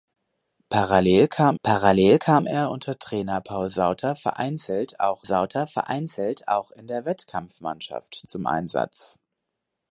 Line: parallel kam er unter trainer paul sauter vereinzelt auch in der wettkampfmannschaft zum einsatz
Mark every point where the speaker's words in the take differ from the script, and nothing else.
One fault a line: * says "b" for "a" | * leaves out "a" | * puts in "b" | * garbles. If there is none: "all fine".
* puts in "parallel kam"
* puts in "sauter vereinzelt auch"